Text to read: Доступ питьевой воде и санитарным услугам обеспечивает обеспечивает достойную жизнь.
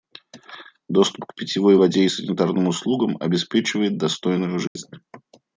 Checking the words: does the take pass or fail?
fail